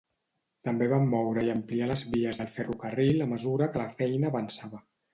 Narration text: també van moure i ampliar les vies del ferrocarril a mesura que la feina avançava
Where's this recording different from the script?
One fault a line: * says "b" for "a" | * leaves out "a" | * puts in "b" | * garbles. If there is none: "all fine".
all fine